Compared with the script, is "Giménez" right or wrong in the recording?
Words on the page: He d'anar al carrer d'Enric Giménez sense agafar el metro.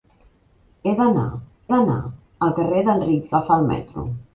wrong